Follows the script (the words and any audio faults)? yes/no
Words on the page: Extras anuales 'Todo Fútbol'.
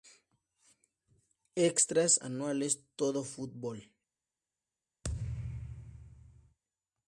no